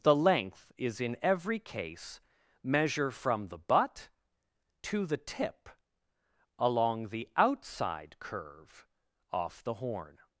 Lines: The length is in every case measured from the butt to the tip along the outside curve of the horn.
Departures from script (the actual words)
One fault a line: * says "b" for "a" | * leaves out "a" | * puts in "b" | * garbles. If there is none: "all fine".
* says "measure" for "measured"
* says "off" for "of"